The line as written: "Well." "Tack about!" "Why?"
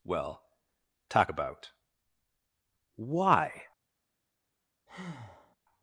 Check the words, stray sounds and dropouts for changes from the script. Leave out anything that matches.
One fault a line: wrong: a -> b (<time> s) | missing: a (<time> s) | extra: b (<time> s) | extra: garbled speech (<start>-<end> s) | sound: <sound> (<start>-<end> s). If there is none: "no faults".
wrong: Tack -> Talk (1.1 s)
sound: breath (4.9-5.6 s)